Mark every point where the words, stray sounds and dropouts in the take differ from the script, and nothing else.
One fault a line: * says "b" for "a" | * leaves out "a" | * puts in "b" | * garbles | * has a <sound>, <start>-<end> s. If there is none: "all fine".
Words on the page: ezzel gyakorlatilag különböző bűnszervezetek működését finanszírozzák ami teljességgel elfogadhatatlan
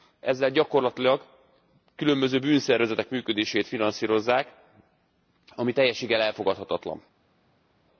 all fine